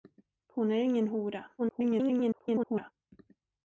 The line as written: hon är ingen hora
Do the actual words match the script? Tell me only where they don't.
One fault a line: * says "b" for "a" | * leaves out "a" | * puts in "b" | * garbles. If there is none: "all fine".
* garbles